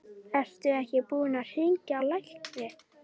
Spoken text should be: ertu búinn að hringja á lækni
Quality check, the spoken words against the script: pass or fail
fail